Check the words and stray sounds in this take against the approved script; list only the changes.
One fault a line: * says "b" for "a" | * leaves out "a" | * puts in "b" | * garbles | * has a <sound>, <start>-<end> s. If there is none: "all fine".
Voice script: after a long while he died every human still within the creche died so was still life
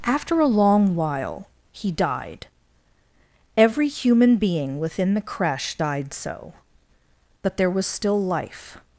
* says "being" for "still"
* puts in "but there"